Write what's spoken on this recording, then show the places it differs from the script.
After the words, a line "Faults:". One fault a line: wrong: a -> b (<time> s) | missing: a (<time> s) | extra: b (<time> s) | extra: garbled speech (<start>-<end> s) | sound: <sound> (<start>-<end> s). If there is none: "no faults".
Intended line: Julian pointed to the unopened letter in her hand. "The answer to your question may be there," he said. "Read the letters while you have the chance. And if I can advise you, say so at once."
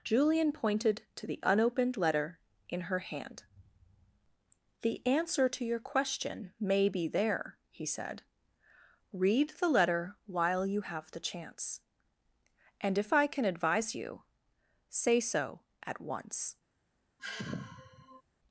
Julian pointed to the unopened letter in her hand. "The answer to your question may be there," he said. "Read the letter while you have the chance. And if I can advise you, say so at once."
Faults:
wrong: letters -> letter (9.7 s)
sound: sigh (17.2-18.2 s)